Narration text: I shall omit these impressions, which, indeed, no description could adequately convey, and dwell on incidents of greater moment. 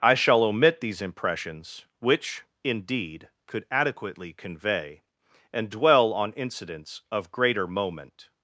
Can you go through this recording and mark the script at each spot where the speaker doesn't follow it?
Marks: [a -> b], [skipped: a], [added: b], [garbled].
I shall omit these impressions, which, indeed, [skipped: no description] could adequately convey, and dwell on incidents of greater moment.